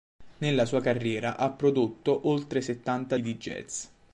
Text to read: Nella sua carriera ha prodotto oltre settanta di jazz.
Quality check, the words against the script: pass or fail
pass